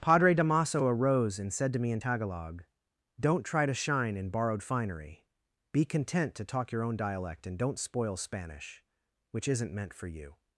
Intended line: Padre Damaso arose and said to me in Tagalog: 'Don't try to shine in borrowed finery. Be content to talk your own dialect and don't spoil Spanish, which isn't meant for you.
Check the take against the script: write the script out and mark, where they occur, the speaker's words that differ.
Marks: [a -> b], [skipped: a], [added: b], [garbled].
Padre Damaso arose and said to me in Tagalog: 'Don't try to shine in borrowed finery. Be content to talk your own dialect and don't spoil Spanish, which isn't meant for you.